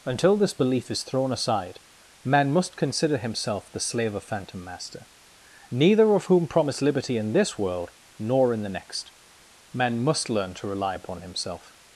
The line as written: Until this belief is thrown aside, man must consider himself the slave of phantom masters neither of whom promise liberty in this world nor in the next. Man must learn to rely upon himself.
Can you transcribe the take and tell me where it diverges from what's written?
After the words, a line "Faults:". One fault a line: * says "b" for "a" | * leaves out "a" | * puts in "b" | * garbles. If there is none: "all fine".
Until this belief is thrown aside, man must consider himself the slave of phantom master neither of whom promise liberty in this world nor in the next. Man must learn to rely upon himself.
Faults:
* says "master" for "masters"